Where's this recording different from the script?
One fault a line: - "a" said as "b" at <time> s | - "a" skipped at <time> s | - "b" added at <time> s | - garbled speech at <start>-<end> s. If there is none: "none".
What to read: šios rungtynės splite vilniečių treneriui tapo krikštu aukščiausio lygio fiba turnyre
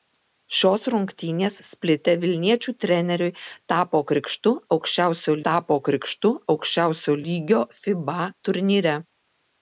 - "tapo krikštu aukščiausio" added at 5.5 s